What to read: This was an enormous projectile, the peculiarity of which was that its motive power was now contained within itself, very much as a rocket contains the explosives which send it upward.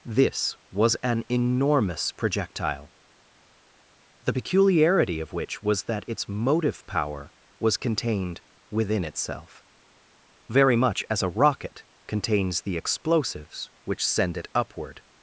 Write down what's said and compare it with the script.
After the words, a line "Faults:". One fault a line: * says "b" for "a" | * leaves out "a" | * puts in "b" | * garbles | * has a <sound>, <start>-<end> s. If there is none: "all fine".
This was an enormous projectile, the peculiarity of which was that its motive power was contained within itself, very much as a rocket contains the explosives which send it upward.
Faults:
* leaves out "now"